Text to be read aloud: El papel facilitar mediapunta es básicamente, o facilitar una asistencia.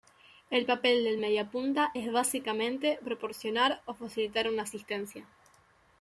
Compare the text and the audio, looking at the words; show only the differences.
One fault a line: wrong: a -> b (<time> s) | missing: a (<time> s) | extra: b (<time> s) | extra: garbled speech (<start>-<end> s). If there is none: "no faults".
wrong: facilitar -> del (1.0 s)
extra: proporcionar (3.0 s)